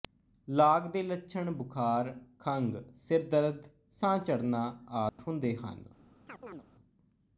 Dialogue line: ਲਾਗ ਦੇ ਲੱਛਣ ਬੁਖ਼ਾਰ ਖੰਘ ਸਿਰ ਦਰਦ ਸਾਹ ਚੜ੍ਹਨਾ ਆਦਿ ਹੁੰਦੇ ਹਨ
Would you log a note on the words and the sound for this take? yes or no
yes